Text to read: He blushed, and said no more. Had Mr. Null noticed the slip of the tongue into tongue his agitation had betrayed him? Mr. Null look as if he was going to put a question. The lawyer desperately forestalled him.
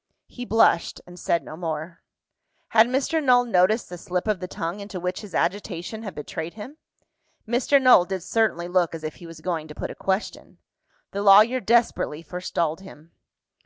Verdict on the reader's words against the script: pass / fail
fail